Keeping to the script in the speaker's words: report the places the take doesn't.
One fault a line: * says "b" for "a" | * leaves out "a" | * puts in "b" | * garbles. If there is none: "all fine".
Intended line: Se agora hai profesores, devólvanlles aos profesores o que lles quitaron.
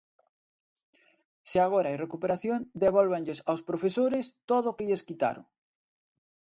* says "recuperación" for "profesores"
* puts in "todo"